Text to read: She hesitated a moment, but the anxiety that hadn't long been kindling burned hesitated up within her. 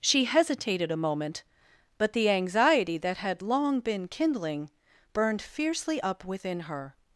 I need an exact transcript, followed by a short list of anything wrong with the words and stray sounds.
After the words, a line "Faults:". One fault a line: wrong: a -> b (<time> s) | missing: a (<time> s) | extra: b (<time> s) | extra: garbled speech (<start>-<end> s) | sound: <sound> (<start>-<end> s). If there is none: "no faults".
She hesitated a moment, but the anxiety that had long been kindling burned fiercely up within her.
Faults:
wrong: hadn't -> had (3.2 s)
wrong: hesitated -> fiercely (5.4 s)